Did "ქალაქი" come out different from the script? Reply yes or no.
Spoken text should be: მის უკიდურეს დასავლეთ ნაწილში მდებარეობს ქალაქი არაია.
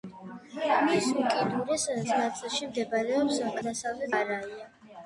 yes